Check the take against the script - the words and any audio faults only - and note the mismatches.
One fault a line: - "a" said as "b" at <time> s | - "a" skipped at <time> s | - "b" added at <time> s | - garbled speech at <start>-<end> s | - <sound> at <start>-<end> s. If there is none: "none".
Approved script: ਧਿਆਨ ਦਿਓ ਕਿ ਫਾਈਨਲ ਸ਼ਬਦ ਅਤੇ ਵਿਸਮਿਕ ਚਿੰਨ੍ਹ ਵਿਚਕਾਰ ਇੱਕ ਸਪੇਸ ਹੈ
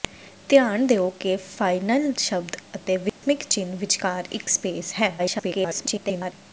- dropout at 3.1-3.2 s
- garbled speech at 5.2-6.3 s